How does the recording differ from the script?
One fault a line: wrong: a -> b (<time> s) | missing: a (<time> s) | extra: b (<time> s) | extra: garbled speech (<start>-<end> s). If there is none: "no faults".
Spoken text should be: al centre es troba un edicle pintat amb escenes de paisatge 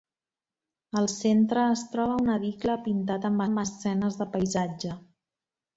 extra: amb (3.5 s)